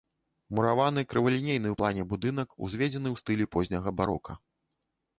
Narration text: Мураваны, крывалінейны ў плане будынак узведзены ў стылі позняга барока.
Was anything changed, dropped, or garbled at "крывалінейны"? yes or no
no